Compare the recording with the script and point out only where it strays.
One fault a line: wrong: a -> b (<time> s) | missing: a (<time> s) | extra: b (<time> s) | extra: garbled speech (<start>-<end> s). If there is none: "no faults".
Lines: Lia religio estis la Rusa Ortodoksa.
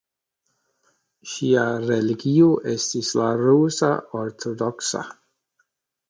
wrong: Lia -> Ŝia (1.3 s)